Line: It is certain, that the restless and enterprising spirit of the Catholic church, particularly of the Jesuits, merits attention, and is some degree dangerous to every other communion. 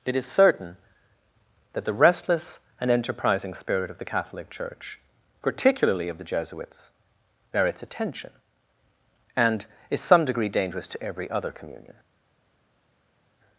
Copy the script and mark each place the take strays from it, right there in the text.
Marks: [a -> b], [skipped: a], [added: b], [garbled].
It is certain, that the restless and enterprising spirit of the Catholic church, particularly of the Jesuits, merits attention, and is some degree dangerous to every other communion.